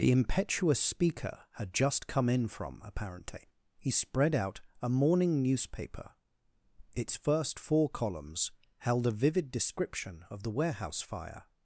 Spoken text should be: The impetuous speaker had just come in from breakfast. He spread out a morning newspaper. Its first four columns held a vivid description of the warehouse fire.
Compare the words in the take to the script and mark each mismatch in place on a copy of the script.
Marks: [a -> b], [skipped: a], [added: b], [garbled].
The impetuous speaker had just come in from [breakfast. -> apparently] He spread out a morning newspaper. Its first four columns held a vivid description of the warehouse fire.